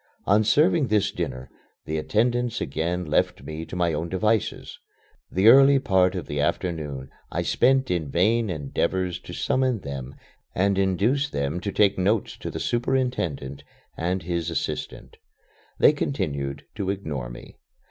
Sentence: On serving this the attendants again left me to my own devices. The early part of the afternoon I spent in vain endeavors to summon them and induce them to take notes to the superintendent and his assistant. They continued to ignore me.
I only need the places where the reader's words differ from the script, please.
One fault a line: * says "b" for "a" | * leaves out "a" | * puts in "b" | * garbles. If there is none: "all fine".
* puts in "dinner"